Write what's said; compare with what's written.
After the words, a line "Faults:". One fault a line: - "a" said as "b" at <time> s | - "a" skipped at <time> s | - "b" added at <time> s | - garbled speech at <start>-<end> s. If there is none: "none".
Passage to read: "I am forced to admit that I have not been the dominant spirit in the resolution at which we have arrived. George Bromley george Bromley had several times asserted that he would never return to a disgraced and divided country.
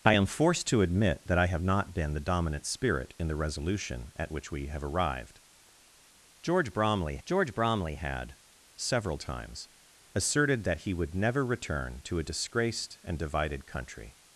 "I am forced to admit that I have not been the dominant spirit in the resolution at which we have arrived. George Bromley george Bromley had several times asserted that he would never return to a disgraced and divided country.
Faults:
none